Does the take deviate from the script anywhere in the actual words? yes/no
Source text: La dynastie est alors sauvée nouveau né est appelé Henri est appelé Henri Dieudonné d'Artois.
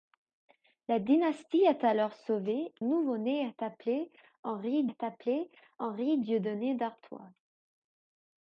no